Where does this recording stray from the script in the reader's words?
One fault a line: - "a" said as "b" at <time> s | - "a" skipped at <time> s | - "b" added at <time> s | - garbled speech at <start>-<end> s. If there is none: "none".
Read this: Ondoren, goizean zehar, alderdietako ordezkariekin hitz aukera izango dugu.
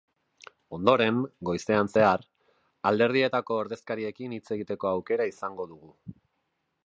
- "egiteko" added at 4.6 s